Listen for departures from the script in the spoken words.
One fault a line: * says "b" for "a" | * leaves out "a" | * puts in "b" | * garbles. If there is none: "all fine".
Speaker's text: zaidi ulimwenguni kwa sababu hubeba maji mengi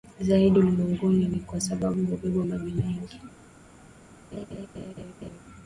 * puts in "ni"